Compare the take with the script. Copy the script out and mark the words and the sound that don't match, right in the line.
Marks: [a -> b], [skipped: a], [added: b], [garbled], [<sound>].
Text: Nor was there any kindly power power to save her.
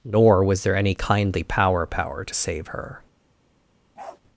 Nor was there any kindly power power to save her. [bark]